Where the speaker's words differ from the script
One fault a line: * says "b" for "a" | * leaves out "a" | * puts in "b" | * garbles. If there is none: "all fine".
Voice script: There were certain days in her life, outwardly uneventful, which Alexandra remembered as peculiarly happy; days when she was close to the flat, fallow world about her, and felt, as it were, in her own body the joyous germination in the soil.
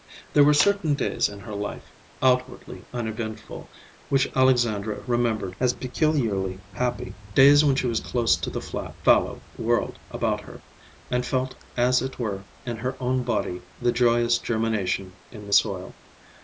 all fine